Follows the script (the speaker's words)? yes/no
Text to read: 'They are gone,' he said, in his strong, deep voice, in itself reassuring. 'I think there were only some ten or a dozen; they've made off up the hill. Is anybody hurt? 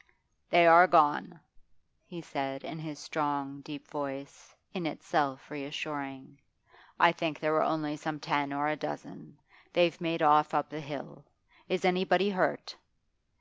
yes